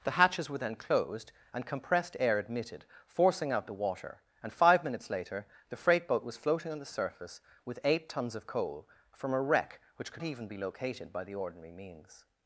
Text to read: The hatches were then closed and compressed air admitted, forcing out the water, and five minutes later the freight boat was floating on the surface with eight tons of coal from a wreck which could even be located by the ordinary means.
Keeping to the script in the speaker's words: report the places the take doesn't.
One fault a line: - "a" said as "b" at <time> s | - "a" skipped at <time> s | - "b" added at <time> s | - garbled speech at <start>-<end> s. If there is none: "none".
none